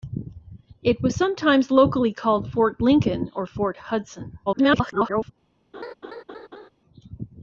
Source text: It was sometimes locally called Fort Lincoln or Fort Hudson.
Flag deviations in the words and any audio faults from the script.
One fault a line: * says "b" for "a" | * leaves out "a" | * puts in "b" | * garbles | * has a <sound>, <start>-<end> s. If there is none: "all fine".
* garbles
* has a laugh, 5.7-6.7 s